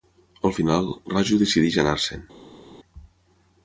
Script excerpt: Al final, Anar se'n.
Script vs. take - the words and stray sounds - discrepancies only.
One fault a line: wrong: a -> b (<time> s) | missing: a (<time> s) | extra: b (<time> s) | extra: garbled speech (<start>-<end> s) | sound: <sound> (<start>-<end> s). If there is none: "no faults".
extra: Raju decideix (1.1 s)